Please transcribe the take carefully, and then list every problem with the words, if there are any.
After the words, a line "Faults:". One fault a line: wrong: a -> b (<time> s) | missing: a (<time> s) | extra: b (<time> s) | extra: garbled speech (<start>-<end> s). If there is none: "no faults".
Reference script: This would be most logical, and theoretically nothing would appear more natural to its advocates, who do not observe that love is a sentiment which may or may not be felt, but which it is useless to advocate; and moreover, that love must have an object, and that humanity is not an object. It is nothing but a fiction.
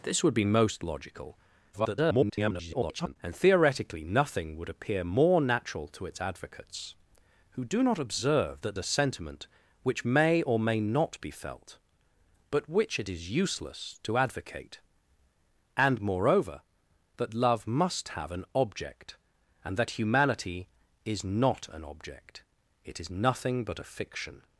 This would be most logical, [garbled] and theoretically nothing would appear more natural to its advocates, who do not observe that a sentiment which may or may not be felt, but which it is useless to advocate; and moreover, that love must have an object, and that humanity is not an object. It is nothing but a fiction.
Faults:
extra: garbled speech (1.7-3.2 s)
missing: love is (8.8 s)